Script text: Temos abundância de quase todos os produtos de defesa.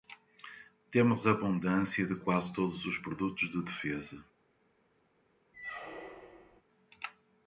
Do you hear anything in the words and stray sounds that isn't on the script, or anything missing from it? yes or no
yes